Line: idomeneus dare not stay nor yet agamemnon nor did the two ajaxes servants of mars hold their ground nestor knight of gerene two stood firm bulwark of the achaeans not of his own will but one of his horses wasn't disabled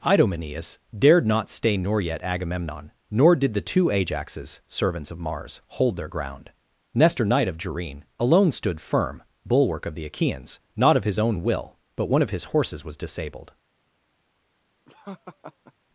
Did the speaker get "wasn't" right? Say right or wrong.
wrong